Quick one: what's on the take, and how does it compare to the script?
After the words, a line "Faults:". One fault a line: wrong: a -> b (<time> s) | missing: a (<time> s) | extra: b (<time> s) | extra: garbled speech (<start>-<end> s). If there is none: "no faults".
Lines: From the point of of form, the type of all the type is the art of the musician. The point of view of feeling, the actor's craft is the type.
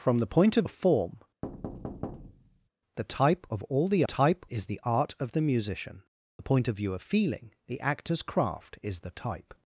From the point of of form, the type of all the type is the art of the musician. The point of view of feeling, the actor's craft is the type.
Faults:
no faults